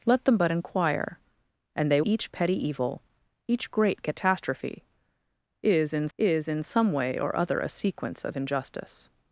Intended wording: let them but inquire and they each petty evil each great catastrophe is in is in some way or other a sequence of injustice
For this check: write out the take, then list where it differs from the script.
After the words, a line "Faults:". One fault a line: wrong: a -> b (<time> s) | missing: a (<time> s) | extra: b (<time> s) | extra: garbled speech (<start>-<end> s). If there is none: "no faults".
let them but inquire and they each petty evil each great catastrophe is in is in some way or other a sequence of injustice
Faults:
no faults